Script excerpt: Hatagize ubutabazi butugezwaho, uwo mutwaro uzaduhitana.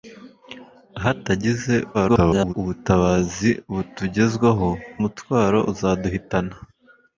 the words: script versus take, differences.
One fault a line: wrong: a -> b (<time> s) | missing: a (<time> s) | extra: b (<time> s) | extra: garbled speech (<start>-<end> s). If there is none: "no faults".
extra: garbled speech (1.9-2.5 s)
missing: uwo (4.7 s)